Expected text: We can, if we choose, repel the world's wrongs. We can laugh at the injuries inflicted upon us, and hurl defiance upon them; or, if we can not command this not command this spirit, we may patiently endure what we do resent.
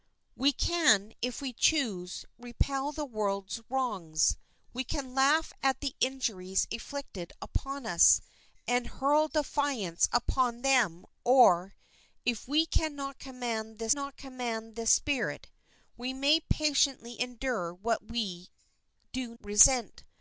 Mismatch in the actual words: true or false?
false